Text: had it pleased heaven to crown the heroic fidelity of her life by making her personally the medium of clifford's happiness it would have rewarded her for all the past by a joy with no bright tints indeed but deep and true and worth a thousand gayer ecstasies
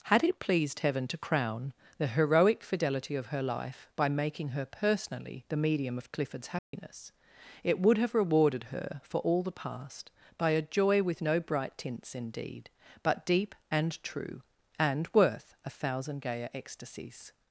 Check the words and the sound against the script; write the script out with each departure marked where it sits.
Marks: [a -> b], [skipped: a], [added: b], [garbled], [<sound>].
had it pleased heaven to crown the heroic fidelity of her life by making her personally the medium of clifford's happiness [dropout] it would have rewarded her for all the past by a joy with no bright tints indeed but deep and true and worth a thousand gayer ecstasies